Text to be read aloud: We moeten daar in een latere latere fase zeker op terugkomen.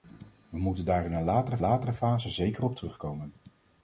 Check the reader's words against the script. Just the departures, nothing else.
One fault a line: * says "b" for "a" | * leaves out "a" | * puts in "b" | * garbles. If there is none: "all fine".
all fine